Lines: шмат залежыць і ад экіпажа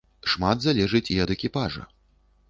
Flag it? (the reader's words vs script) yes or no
no